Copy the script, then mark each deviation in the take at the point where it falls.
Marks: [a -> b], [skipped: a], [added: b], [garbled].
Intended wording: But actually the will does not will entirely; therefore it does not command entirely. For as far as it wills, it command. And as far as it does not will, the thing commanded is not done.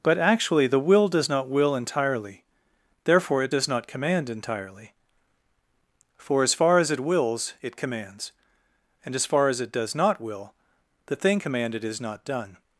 But actually the will does not will entirely; therefore it does not command entirely. For as far as it wills, it [command. -> commands] And as far as it does not will, the thing commanded is not done.